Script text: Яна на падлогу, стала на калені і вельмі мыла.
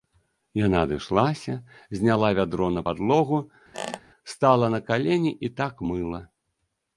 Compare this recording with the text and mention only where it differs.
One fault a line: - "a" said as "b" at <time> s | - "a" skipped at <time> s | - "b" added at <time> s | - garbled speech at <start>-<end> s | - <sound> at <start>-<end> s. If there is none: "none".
- "адышлася зняла вядро" added at 0.8 s
- squeak at 3.7-4.0 s
- "вельмі" said as "так" at 5.6 s